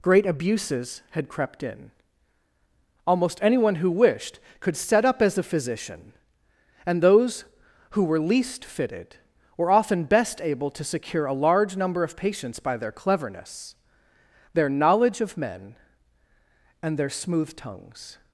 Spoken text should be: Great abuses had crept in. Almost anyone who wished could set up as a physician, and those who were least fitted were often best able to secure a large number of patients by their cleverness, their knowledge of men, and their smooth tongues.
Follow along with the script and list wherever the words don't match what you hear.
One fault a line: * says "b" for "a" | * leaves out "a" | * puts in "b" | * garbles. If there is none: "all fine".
all fine